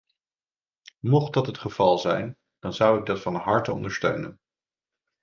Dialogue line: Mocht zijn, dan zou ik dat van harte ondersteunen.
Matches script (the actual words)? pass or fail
fail